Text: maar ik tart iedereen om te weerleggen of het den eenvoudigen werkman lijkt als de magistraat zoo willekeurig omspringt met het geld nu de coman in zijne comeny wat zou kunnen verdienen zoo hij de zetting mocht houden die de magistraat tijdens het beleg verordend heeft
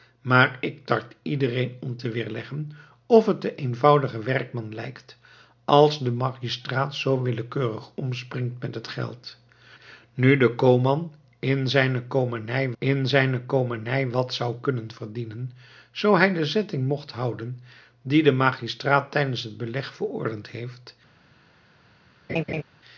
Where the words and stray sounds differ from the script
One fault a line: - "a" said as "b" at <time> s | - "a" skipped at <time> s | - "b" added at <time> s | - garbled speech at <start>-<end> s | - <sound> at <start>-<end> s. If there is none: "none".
- "in zijne comeny" added at 12.8 s
- laugh at 22.3-22.6 s